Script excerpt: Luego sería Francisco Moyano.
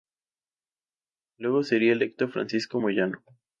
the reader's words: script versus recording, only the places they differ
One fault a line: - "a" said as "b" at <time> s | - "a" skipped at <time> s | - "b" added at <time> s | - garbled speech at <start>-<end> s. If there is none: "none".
- "electo" added at 1.9 s